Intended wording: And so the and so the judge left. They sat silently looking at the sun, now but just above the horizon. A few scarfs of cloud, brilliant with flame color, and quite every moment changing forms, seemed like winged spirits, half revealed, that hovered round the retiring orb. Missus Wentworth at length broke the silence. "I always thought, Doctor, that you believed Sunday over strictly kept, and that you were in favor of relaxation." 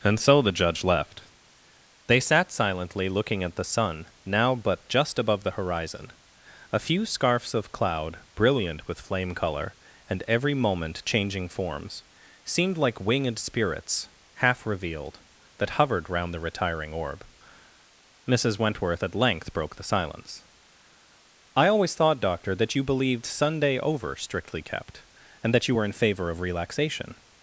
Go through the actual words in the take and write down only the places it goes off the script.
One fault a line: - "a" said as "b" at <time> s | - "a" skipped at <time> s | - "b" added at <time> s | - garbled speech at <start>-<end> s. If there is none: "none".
- "and so the" skipped at 0.5 s
- "quite" skipped at 10.2 s